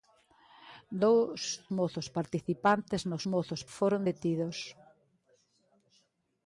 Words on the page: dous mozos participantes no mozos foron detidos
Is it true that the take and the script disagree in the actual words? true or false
false